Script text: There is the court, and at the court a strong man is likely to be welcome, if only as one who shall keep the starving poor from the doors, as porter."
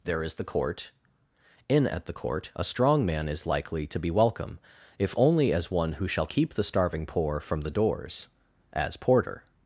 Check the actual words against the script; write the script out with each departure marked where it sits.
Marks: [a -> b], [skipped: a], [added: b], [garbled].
There is the court, [and -> in] at the court a strong man is likely to be welcome, if only as one who shall keep the starving poor from the doors, as porter."